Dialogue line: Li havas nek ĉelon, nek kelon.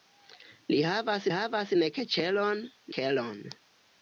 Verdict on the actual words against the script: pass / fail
fail